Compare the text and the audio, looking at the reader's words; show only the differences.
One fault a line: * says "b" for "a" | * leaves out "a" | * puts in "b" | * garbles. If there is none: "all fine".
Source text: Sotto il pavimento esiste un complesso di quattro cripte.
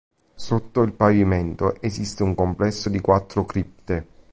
all fine